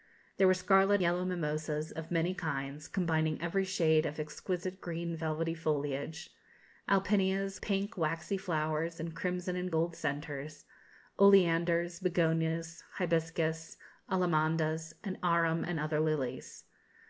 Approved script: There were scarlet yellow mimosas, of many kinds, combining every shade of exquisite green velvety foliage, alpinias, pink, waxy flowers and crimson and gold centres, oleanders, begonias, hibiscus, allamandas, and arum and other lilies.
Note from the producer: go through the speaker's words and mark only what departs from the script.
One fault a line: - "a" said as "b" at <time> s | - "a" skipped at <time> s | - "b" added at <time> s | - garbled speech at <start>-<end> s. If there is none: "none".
none